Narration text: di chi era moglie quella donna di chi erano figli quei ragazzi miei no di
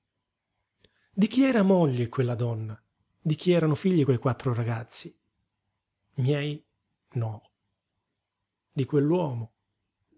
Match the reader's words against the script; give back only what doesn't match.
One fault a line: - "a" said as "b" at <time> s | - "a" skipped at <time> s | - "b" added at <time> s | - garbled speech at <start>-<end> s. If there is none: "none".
- "quattro" added at 4.2 s